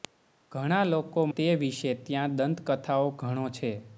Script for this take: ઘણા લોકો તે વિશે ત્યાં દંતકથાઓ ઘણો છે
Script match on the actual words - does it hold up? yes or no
yes